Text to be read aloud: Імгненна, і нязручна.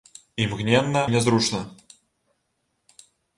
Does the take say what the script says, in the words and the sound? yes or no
yes